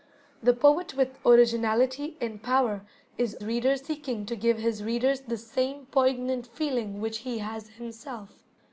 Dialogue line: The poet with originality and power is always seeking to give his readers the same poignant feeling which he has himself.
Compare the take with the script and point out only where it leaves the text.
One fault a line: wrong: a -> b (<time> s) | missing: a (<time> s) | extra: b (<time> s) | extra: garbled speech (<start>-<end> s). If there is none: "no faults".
wrong: always -> readers (3.4 s)